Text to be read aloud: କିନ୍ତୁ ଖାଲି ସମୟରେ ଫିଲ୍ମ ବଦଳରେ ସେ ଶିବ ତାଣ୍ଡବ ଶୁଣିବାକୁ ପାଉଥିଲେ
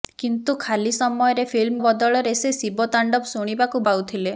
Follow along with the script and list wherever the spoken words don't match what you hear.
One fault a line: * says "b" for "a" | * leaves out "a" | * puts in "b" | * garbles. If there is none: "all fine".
all fine